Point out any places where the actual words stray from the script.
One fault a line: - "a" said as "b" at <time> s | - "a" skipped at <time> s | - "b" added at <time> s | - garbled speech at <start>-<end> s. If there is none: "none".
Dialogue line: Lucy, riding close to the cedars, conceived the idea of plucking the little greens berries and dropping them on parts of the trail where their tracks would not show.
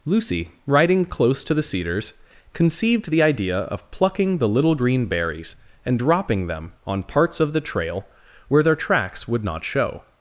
- "greens" said as "green" at 4.7 s